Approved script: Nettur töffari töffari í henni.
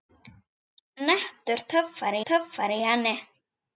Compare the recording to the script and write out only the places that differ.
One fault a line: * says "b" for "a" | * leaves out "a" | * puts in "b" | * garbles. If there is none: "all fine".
all fine